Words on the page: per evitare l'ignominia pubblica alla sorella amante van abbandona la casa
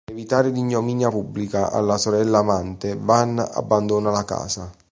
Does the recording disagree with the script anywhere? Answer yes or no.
no